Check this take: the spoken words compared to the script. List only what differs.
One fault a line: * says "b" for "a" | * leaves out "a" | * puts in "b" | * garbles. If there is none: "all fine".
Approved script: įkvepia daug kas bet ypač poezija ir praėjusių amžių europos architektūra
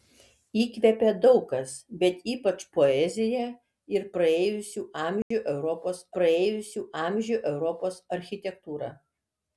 * puts in "praėjusių amžių europos"